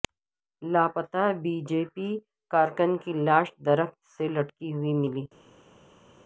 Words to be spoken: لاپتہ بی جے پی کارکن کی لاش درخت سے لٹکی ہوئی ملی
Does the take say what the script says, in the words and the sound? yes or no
yes